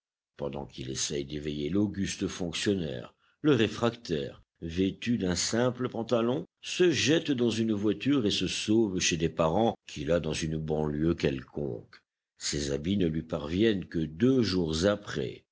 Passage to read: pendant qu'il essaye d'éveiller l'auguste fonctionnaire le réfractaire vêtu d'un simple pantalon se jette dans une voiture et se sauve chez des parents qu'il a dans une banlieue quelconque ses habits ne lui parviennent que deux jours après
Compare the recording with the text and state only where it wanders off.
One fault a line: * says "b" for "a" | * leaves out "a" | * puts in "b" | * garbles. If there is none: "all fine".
all fine